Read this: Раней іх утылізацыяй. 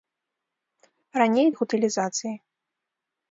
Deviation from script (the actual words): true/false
false